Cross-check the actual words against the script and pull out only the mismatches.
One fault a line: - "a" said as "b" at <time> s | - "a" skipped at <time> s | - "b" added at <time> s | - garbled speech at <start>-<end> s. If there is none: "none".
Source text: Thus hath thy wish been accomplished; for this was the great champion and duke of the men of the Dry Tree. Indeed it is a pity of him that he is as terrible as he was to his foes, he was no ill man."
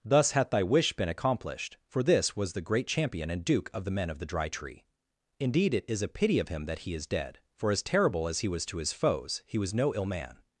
- "dead for" added at 7.1 s